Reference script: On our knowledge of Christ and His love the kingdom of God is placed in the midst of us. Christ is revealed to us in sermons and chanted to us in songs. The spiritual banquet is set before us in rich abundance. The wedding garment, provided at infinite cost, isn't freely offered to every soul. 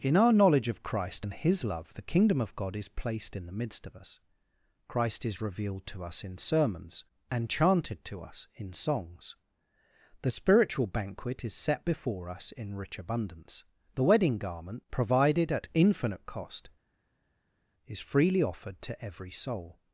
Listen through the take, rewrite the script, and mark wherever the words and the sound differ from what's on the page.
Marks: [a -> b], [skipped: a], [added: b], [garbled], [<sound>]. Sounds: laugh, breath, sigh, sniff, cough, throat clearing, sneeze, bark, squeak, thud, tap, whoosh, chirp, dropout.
[On -> In] our knowledge of Christ and His love the kingdom of God is placed in the midst of us. Christ is revealed to us in sermons and chanted to us in songs. The spiritual banquet is set before us in rich abundance. The wedding garment, provided at infinite cost, [isn't -> is] freely offered to every soul.